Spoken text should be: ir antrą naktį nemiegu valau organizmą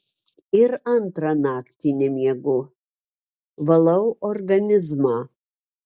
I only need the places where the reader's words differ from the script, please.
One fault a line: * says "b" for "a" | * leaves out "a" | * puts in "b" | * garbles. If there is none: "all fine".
all fine